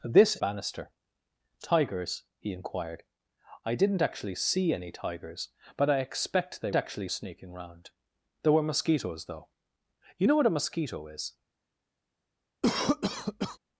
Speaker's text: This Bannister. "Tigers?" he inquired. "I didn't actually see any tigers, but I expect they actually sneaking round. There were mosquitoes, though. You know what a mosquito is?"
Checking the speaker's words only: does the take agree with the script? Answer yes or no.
yes